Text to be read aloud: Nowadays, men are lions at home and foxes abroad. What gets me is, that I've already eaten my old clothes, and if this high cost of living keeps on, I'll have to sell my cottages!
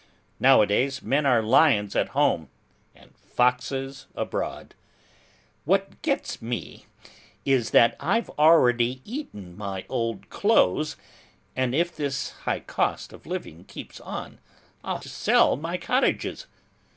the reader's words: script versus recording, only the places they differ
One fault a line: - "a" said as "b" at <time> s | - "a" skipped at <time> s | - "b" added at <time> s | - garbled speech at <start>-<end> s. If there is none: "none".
- "have" skipped at 15.0 s